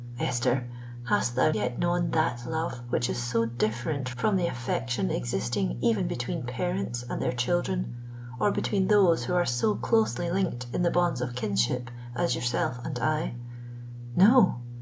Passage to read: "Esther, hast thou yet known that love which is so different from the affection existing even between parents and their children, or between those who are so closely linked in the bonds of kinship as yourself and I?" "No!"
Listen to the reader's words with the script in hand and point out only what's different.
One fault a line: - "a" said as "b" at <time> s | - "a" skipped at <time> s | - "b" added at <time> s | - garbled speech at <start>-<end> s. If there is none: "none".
none